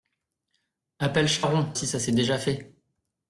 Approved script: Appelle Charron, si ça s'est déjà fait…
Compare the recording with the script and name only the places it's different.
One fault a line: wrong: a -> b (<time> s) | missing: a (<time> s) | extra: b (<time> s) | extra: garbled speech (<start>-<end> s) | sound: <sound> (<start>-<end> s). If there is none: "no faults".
no faults